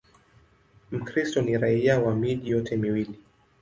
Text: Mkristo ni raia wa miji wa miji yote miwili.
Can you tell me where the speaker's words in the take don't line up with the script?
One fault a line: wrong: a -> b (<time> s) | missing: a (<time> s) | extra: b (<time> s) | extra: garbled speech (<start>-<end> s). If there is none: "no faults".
missing: wa miji (2.5 s)